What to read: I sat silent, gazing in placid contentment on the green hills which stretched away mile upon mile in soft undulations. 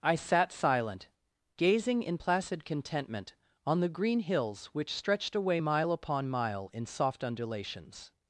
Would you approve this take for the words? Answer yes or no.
yes